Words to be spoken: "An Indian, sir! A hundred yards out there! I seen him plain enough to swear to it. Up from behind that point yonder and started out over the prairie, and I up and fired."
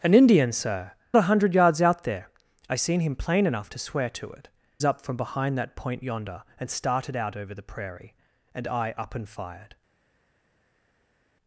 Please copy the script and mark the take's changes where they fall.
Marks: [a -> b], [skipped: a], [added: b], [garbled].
"An Indian, sir! A hundred yards out there! I seen him plain enough to swear to it. Up from behind that point yonder and started out over the prairie, and I up and fired."